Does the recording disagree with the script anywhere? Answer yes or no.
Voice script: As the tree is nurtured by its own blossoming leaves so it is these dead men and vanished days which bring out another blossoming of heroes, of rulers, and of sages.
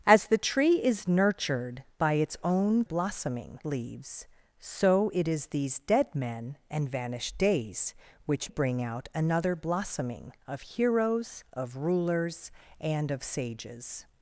no